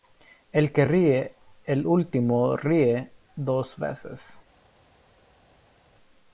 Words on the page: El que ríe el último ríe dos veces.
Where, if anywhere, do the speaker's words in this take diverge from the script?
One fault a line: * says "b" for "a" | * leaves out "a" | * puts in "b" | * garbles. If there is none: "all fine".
all fine